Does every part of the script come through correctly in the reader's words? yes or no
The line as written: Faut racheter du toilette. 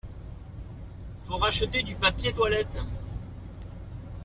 no